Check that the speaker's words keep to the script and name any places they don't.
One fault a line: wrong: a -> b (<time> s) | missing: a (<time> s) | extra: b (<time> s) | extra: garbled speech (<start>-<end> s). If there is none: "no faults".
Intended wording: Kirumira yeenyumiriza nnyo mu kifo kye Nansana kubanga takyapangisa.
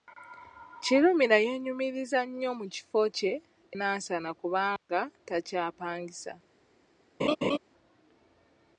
no faults